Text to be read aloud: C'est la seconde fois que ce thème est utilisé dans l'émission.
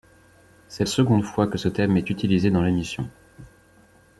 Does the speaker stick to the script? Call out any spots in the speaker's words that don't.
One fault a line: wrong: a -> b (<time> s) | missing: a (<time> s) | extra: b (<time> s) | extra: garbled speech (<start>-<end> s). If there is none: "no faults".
missing: la (0.8 s)